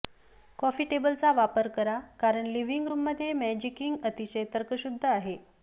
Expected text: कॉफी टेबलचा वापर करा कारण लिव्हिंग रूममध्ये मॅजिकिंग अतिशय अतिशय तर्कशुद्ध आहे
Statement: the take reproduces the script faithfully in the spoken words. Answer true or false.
false